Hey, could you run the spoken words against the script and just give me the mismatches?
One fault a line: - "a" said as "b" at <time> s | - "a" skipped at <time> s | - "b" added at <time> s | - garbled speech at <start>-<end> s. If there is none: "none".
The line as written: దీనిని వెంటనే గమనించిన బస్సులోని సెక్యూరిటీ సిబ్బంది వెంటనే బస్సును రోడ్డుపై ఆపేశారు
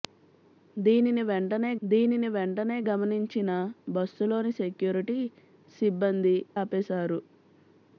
- "దీనిని వెంటనే" added at 1.8 s
- "వెంటనే బస్సును రోడ్డుపై" skipped at 6.4 s